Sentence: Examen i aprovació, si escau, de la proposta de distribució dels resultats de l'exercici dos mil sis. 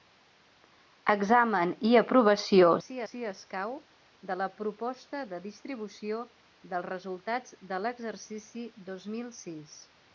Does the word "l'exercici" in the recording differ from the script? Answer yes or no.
no